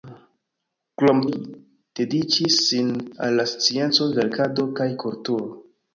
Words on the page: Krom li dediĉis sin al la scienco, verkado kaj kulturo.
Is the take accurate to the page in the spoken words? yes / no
yes